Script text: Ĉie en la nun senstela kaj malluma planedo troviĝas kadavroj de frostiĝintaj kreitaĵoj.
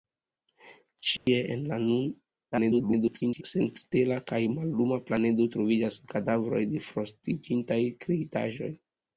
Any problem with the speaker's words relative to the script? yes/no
yes